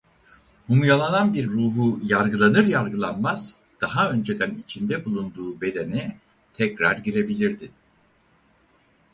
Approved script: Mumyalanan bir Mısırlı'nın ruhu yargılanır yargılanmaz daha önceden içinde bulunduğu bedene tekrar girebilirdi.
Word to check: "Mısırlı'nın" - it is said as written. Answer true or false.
false